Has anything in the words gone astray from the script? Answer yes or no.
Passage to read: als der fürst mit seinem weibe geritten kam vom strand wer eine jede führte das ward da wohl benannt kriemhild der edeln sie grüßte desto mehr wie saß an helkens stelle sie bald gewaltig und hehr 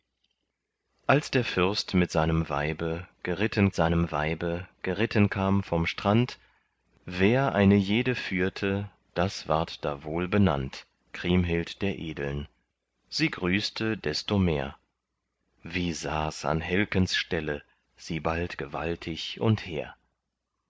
yes